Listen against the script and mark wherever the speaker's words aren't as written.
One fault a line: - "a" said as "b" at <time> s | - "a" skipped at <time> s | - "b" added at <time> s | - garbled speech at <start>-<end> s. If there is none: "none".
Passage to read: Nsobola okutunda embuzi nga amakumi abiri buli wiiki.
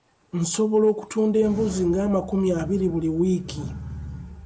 none